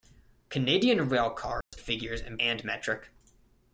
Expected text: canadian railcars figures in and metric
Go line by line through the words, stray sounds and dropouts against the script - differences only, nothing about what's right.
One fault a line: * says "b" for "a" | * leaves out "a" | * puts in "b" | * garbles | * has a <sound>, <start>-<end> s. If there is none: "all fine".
* has a dropout, 1.6-1.7 s